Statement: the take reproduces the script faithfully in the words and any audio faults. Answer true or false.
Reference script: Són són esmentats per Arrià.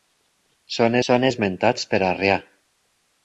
true